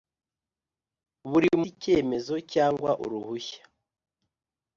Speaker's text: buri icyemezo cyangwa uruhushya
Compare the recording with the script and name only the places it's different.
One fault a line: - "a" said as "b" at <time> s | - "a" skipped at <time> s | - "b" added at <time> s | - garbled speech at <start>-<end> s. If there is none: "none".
none